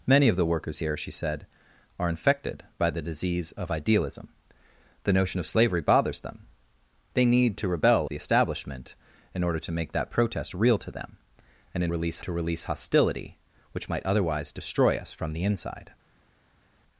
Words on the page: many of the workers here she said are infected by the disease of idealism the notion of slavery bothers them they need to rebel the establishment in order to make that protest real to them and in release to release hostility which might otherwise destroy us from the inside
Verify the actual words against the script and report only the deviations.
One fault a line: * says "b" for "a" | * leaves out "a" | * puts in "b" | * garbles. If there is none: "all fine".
all fine